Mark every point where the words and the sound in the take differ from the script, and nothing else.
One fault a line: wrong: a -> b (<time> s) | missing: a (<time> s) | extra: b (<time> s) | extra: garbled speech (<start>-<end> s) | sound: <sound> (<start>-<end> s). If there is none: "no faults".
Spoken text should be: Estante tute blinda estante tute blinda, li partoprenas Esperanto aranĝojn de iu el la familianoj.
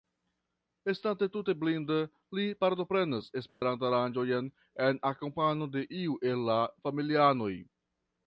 missing: estante tute blinda (2.0 s)
sound: dropout (3.5-3.6 s)
extra: en akompano (4.9 s)